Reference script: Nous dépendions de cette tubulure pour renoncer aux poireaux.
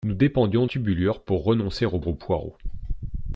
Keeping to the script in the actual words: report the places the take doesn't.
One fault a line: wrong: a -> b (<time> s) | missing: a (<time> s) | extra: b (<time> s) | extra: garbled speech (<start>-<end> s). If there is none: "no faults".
missing: de cette (0.7 s)
extra: aux (2.0 s)